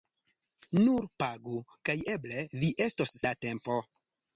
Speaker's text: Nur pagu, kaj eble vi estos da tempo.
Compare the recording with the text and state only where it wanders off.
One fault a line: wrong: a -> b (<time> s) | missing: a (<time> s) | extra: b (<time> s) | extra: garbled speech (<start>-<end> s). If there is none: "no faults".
no faults